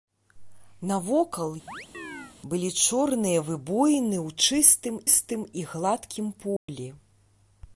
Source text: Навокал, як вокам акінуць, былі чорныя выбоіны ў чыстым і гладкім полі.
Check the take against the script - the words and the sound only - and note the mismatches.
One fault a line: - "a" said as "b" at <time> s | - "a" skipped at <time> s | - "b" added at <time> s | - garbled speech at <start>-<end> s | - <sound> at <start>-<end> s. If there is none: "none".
- "як вокам акінуць" skipped at 1.5 s
- chirp at 1.7-2.4 s
- "чыстым" added at 5.0 s
- dropout at 6.6-6.7 s